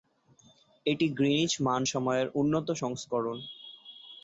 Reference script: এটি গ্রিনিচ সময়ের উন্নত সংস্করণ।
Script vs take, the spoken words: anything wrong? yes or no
yes